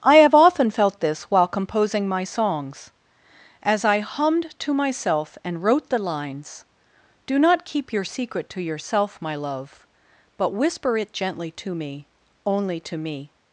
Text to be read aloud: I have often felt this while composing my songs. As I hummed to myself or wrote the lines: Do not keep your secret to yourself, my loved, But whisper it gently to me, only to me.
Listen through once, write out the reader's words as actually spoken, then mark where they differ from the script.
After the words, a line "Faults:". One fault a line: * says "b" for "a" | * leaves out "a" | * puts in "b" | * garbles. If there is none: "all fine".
I have often felt this while composing my songs. As I hummed to myself and wrote the lines: Do not keep your secret to yourself, my love, But whisper it gently to me, only to me.
Faults:
* says "and" for "or"
* says "love" for "loved"